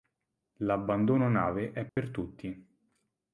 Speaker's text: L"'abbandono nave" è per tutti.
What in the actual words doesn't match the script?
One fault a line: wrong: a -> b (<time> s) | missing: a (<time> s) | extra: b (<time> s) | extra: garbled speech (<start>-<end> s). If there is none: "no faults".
no faults